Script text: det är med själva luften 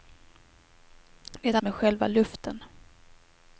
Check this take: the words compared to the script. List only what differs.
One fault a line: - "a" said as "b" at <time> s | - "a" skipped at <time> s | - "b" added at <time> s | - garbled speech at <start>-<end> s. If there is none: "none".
none